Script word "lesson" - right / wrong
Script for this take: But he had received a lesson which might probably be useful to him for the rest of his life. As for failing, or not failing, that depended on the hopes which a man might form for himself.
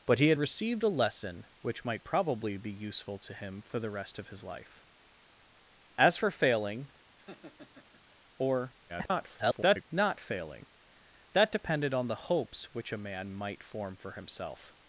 right